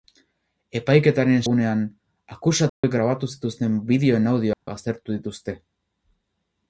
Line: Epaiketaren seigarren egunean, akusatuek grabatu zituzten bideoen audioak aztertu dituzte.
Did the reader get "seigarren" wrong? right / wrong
wrong